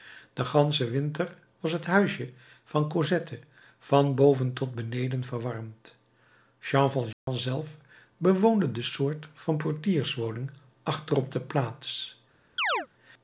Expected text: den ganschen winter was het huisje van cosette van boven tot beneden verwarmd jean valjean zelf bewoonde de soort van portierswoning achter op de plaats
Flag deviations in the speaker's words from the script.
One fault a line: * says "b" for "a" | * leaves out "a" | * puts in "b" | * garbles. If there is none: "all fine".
all fine